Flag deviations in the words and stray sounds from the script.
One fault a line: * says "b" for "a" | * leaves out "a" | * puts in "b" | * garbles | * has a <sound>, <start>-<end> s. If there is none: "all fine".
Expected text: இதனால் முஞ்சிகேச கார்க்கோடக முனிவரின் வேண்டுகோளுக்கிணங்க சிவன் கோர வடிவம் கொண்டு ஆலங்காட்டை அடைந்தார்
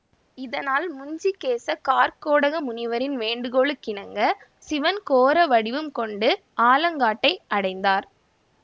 all fine